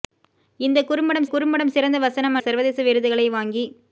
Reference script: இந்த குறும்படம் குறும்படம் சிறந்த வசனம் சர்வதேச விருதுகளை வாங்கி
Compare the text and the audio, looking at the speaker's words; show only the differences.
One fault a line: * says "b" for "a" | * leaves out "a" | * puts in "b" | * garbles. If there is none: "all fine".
all fine